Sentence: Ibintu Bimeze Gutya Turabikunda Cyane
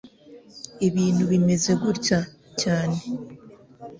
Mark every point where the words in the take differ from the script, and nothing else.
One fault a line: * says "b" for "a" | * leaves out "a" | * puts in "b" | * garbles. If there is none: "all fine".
* leaves out "Turabikunda"